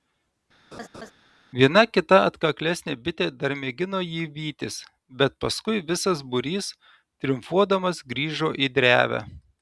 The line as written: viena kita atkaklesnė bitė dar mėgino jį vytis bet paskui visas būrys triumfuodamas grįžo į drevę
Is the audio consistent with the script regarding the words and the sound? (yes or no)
no